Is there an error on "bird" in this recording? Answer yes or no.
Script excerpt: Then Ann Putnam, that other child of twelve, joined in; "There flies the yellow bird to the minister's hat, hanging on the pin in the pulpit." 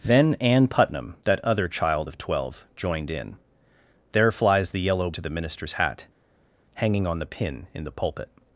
yes